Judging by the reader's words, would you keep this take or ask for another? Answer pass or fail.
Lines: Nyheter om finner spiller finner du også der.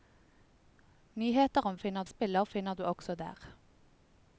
pass